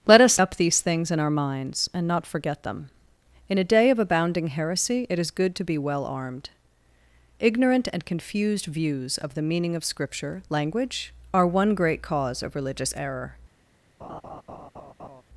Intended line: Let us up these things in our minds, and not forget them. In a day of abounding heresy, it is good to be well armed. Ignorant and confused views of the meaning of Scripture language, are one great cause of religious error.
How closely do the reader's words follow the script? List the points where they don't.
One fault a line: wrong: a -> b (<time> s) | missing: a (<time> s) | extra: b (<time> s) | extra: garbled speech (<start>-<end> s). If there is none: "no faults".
no faults